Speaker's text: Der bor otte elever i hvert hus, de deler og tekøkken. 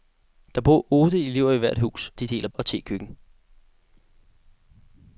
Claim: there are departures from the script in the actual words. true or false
false